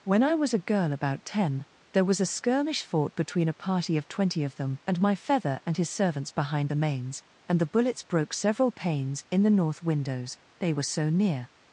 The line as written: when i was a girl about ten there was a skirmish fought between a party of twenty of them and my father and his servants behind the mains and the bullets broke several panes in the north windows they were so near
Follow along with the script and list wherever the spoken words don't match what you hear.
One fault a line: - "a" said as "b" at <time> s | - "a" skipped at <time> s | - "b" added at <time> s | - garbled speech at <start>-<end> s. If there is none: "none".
- "father" said as "feather" at 5.1 s